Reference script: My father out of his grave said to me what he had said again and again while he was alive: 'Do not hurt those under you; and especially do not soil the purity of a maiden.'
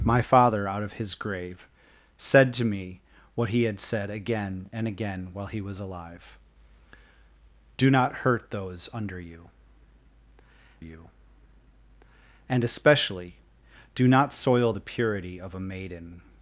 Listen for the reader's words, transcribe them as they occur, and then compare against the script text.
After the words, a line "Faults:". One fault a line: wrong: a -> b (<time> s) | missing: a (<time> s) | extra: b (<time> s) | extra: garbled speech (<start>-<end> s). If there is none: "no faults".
My father out of his grave said to me what he had said again and again while he was alive: 'Do not hurt those under you you; and especially do not soil the purity of a maiden.'
Faults:
extra: you (10.8 s)